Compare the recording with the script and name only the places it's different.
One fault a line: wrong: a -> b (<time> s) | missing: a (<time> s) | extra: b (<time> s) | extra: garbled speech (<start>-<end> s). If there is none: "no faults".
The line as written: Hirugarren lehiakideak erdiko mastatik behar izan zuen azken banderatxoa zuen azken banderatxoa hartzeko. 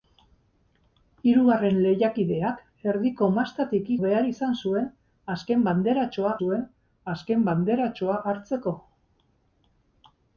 no faults